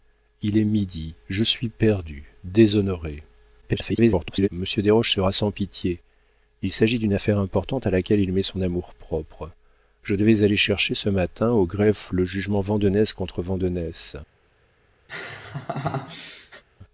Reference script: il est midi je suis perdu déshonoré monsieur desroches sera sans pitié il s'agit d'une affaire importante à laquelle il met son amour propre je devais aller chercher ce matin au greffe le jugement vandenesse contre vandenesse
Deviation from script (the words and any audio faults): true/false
true